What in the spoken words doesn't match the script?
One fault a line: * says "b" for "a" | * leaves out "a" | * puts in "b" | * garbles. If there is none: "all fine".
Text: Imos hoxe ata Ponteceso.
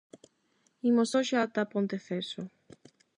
all fine